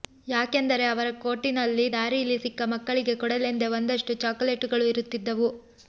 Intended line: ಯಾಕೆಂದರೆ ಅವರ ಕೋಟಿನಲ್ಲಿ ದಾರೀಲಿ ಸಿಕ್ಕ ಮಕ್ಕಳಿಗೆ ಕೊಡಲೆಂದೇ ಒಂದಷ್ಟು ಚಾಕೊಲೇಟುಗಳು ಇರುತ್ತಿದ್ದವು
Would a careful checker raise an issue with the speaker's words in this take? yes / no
no